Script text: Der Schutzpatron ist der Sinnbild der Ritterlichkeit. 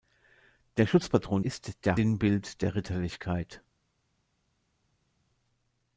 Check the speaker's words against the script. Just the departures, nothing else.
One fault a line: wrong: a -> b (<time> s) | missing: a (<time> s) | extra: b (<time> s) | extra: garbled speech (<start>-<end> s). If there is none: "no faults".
no faults